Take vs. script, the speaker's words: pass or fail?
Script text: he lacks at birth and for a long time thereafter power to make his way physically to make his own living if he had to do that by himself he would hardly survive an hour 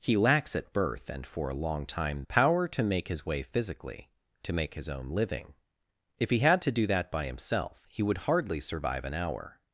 fail